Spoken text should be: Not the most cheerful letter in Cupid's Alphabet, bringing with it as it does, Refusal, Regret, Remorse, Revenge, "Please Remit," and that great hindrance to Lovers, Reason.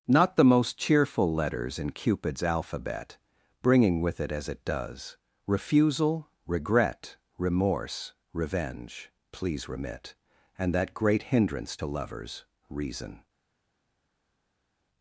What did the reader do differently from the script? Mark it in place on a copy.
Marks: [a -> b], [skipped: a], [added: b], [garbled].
Not the most cheerful [letter -> letters] in Cupid's Alphabet, bringing with it as it does, Refusal, Regret, Remorse, Revenge, "Please Remit," and that great hindrance to Lovers, Reason.